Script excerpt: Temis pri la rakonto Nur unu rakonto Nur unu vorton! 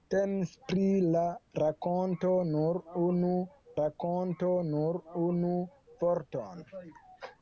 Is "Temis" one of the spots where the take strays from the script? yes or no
no